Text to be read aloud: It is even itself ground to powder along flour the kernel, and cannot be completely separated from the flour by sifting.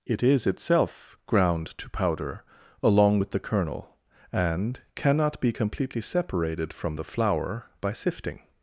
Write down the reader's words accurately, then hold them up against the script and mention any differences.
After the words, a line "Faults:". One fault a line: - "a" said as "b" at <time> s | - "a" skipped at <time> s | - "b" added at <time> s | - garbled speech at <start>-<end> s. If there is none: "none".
It is itself ground to powder along with the kernel, and cannot be completely separated from the flour by sifting.
Faults:
- "even" skipped at 0.5 s
- "flour" said as "with" at 3.2 s